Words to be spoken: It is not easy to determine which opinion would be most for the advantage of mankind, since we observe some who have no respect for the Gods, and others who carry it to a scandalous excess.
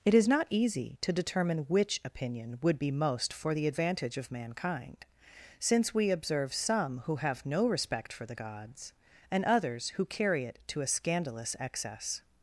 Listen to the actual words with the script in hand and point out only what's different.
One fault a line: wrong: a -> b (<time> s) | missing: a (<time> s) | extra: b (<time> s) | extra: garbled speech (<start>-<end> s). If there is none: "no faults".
no faults